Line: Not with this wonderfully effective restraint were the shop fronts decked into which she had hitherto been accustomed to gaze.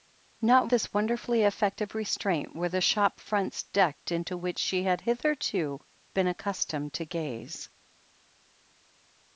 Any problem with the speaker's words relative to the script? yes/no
yes